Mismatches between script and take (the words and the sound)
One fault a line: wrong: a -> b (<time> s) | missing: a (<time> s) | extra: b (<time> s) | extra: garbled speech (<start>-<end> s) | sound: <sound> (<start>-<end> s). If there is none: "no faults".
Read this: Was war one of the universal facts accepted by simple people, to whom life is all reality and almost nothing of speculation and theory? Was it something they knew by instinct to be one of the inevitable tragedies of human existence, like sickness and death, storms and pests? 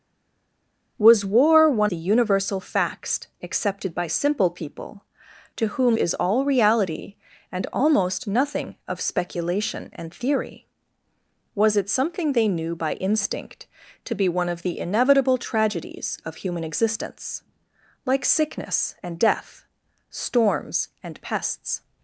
missing: of (1.9 s)
missing: life (6.0 s)